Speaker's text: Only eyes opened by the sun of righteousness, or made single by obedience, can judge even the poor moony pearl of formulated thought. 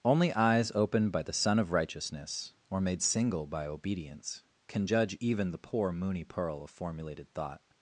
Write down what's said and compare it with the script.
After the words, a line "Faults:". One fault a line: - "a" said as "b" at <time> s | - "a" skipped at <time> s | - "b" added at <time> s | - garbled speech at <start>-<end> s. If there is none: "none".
Only eyes opened by the sun of righteousness, or made single by obedience, can judge even the poor moony pearl of formulated thought.
Faults:
none